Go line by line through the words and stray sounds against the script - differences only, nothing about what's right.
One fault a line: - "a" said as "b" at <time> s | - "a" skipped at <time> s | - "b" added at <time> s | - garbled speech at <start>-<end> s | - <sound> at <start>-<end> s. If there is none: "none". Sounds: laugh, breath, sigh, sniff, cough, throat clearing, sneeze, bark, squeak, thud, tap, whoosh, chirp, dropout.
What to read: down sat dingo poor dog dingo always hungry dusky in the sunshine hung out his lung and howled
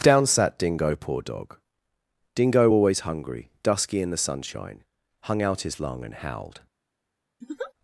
- laugh at 7.4-7.7 s